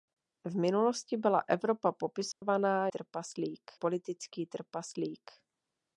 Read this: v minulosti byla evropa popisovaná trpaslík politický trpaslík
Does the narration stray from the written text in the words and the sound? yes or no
yes